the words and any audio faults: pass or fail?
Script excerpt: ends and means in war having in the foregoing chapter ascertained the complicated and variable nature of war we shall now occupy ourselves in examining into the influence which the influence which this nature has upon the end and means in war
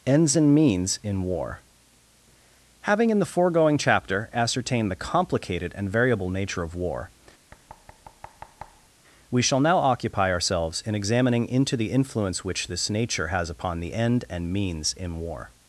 fail